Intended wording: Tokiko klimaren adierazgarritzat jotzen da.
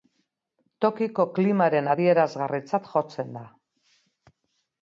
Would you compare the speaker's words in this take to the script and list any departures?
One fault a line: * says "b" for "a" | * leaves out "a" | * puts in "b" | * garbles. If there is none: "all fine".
all fine